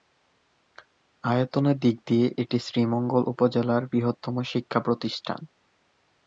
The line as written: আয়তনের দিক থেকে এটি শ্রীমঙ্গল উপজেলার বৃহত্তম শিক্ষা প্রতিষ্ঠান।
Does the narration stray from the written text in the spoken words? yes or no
yes